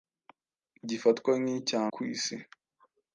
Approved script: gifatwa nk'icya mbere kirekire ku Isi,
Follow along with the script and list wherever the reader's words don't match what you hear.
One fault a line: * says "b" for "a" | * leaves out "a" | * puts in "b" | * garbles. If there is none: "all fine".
* leaves out "mbere kirekire"